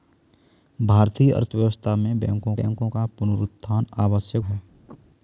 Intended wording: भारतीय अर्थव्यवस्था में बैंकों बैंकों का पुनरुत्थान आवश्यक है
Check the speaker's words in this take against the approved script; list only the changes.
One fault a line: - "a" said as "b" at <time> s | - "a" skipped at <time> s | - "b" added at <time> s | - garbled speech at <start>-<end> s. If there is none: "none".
none